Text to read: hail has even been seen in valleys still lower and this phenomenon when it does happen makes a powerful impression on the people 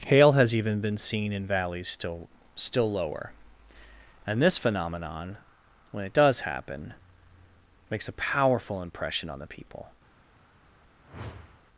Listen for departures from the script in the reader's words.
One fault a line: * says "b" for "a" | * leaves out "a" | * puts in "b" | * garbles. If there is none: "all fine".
* puts in "still"